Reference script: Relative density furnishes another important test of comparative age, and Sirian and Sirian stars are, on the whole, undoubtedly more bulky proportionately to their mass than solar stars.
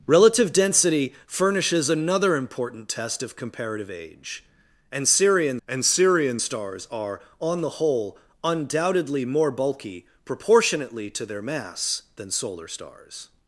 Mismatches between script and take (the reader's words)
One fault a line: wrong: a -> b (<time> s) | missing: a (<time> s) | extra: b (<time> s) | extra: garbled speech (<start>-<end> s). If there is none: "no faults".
no faults